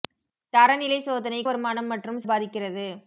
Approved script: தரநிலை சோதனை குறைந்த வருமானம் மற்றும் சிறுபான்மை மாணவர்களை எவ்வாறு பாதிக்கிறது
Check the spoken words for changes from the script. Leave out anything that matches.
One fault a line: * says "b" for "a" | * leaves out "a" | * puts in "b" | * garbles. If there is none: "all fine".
* leaves out "குறைந்த"
* leaves out "சிறுபான்மை மாணவர்களை எவ்வாறு"